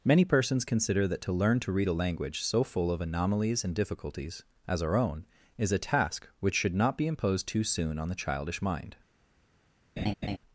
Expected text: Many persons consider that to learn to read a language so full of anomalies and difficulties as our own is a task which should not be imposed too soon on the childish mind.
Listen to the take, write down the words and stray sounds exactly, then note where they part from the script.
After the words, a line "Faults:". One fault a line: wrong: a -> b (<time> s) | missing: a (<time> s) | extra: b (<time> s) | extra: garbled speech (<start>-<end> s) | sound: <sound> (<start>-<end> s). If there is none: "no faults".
Many persons consider that to learn to read a language so full of anomalies and difficulties as our own is a task which should not be imposed too soon on the childish mind.
Faults:
sound: laugh (10.0-10.4 s)